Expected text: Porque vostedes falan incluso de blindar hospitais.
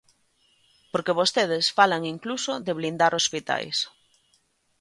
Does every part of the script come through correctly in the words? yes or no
yes